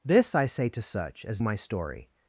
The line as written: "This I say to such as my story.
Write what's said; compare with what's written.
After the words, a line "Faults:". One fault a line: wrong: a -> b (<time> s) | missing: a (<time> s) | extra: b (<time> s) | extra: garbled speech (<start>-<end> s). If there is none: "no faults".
"This I say to such as my story.
Faults:
no faults